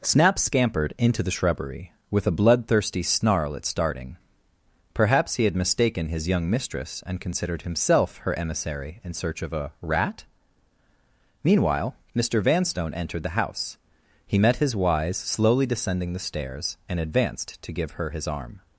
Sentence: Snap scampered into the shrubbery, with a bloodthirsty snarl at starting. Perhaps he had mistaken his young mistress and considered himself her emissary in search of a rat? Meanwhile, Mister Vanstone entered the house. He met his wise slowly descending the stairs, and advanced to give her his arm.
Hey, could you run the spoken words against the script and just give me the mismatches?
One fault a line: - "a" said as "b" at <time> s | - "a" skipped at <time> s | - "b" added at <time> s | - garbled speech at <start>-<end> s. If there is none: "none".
none